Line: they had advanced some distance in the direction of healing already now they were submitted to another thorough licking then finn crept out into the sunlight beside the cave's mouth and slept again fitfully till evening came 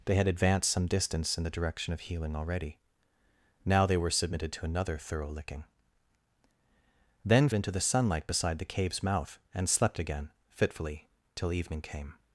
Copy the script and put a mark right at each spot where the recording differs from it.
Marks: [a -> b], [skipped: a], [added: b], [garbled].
they had advanced some distance in the direction of healing already now they were submitted to another thorough licking then [skipped: finn crept out] into the sunlight beside the cave's mouth and slept again fitfully till evening came